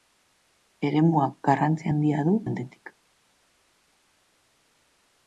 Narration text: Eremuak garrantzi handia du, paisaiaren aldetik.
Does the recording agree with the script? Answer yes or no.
no